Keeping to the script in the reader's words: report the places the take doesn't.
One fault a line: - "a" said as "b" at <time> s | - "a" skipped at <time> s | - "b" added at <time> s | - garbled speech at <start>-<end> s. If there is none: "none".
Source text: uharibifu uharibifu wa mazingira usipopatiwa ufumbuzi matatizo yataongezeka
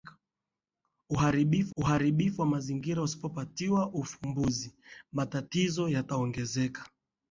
none